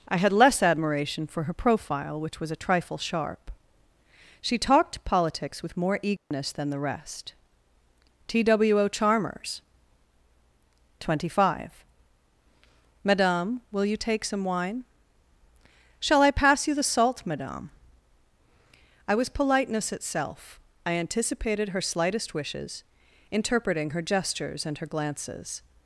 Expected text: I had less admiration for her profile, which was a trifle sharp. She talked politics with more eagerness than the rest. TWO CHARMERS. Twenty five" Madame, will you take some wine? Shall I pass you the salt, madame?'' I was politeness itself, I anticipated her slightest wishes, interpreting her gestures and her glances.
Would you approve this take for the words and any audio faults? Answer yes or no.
no